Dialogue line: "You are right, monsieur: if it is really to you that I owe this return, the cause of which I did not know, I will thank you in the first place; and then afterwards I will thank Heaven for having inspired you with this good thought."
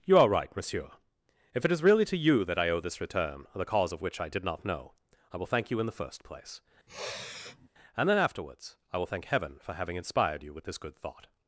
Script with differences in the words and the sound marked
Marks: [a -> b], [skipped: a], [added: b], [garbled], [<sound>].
"You are right, monsieur: if it is really to you that I owe this return, the cause of which I did not know, I will thank you in the first place; [sniff] and then afterwards I will thank Heaven for having inspired you with this good thought."